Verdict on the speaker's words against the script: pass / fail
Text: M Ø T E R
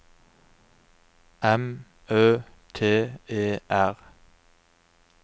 pass